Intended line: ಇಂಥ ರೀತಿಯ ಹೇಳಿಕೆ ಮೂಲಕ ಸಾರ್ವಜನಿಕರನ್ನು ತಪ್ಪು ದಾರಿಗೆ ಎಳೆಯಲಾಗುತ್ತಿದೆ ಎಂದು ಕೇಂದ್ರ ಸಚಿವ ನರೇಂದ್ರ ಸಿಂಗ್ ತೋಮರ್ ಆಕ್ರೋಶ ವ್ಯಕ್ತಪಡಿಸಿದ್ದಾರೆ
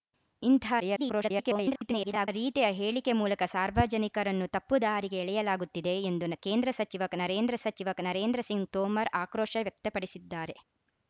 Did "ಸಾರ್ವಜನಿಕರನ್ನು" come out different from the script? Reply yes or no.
no